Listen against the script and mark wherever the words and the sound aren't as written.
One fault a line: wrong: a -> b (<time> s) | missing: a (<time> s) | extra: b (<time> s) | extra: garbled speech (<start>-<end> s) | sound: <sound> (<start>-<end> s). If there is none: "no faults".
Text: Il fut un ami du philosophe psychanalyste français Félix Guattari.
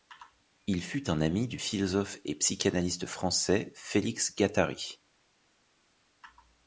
extra: et (2.2 s)